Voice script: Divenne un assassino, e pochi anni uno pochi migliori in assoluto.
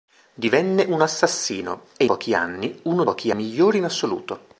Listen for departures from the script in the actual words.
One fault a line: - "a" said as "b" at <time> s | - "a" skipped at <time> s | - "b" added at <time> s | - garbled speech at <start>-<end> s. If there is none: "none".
none